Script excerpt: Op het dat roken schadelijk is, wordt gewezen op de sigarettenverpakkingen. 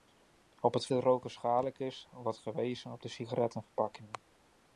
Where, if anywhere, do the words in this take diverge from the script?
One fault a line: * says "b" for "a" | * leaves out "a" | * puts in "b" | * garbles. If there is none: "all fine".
all fine